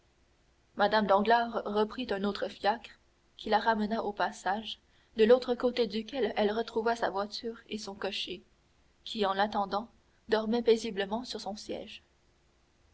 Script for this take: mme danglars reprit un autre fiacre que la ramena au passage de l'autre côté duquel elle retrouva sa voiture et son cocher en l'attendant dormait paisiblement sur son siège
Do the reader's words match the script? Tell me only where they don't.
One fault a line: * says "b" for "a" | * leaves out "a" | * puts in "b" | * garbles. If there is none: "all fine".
* says "qui" for "que"
* puts in "qui"